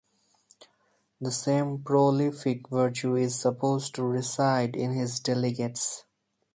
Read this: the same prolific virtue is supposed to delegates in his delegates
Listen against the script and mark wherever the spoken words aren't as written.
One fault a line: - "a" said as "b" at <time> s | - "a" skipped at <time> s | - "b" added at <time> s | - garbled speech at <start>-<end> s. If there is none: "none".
- "delegates" said as "reside" at 4.0 s